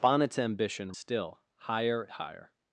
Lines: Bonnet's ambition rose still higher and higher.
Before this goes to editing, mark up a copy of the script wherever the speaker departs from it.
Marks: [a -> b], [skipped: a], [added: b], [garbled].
Bonnet's ambition [skipped: rose] still higher [skipped: and] higher.